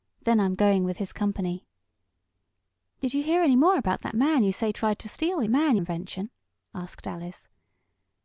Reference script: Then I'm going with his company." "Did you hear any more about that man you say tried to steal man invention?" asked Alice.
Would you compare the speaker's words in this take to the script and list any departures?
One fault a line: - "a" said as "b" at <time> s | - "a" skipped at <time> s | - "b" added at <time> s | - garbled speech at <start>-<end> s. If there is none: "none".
none